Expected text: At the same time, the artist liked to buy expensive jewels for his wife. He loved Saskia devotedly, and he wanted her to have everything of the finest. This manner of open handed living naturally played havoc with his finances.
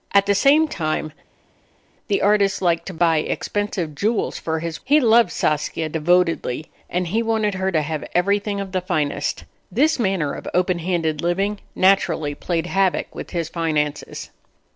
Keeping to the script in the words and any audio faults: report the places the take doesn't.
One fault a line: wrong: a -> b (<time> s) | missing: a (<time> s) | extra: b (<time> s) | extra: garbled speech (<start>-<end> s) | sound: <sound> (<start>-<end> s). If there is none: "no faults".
missing: wife (4.8 s)